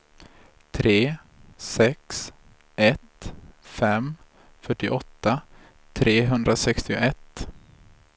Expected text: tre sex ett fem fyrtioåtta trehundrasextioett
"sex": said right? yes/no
yes